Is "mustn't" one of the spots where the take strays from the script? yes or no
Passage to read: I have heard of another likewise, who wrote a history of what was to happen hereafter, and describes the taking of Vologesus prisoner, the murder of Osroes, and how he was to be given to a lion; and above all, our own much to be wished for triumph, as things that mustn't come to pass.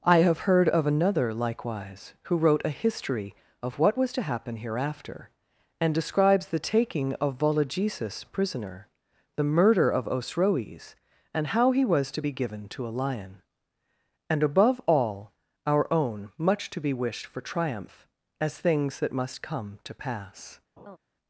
yes